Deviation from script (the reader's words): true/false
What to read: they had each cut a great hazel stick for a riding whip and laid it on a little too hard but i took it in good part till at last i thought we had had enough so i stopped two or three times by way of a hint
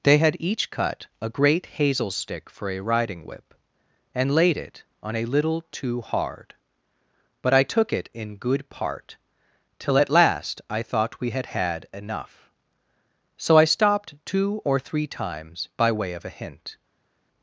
false